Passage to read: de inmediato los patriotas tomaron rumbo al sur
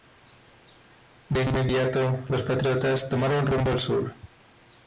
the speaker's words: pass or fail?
pass